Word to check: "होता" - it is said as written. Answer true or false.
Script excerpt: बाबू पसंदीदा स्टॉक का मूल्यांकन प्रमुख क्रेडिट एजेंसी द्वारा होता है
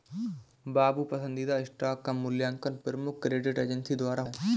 false